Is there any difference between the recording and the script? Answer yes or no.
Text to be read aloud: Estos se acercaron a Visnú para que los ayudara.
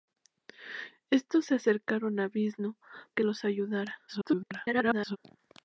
yes